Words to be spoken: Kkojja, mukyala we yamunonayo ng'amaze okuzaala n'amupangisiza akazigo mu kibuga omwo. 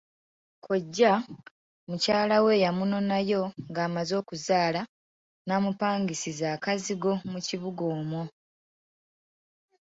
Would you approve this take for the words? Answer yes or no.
yes